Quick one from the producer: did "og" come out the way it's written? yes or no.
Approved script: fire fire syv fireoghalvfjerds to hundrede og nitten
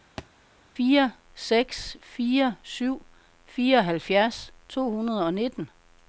yes